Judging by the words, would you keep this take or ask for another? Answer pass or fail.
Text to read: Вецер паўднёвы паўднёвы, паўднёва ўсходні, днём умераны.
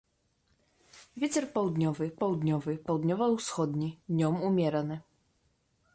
pass